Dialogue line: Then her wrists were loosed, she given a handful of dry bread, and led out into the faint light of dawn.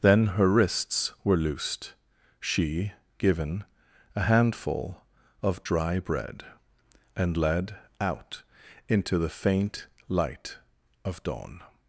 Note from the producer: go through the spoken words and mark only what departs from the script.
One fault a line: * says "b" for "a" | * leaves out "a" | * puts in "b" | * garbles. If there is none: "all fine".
all fine